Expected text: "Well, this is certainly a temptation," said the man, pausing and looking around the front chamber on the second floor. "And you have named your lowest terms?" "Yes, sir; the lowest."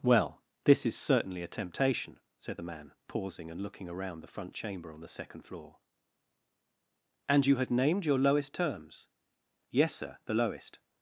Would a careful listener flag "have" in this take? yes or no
yes